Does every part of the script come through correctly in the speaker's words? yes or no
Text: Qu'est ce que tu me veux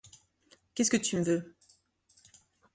yes